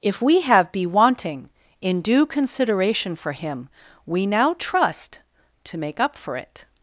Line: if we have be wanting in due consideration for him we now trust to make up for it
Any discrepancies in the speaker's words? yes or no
no